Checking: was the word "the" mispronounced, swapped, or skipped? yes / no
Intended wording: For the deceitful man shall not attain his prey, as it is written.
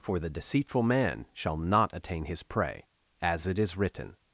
no